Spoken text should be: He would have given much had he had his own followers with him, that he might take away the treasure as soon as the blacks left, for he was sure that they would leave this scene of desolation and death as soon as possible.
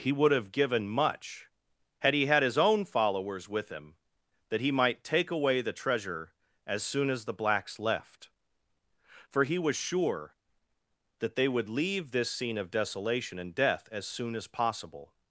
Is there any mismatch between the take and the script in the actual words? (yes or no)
no